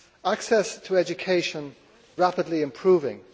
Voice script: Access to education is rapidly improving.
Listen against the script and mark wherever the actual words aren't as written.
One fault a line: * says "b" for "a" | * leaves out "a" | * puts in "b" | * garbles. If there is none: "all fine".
* leaves out "is"